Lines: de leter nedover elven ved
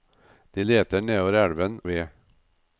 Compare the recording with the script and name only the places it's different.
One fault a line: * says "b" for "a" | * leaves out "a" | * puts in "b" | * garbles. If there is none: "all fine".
all fine